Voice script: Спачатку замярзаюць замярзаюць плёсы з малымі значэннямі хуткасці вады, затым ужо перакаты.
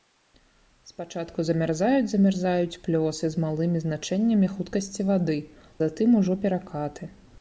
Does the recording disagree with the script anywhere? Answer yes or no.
no